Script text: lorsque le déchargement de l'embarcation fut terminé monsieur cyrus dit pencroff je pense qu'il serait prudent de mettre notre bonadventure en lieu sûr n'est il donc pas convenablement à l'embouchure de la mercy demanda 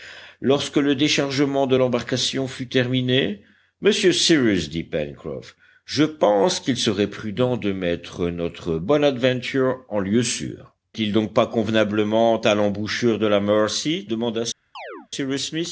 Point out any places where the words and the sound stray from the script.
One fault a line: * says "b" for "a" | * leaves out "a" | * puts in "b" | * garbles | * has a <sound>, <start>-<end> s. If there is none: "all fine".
* leaves out "n'est"
* has a chirp, 14.7-15.1 s